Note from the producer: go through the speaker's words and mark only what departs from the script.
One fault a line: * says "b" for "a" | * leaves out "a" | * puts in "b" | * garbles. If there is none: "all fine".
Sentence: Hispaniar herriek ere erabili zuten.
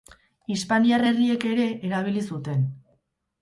all fine